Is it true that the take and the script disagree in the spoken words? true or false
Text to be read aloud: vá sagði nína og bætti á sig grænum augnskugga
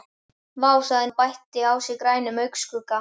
true